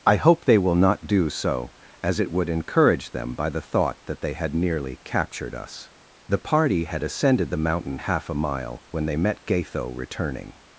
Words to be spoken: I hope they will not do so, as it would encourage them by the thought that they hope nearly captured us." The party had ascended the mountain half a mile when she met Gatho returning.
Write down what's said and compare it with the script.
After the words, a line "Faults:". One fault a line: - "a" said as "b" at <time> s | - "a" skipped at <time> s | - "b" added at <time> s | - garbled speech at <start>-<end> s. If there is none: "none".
I hope they will not do so, as it would encourage them by the thought that they had nearly captured us." The party had ascended the mountain half a mile when they met Gatho returning.
Faults:
- "hope" said as "had" at 4.3 s
- "she" said as "they" at 9.0 s